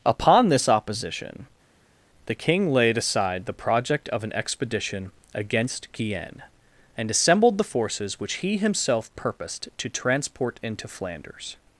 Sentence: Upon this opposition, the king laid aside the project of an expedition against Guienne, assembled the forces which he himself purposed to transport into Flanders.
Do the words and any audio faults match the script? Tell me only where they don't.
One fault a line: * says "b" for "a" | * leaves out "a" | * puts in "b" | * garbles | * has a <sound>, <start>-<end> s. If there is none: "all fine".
* puts in "and"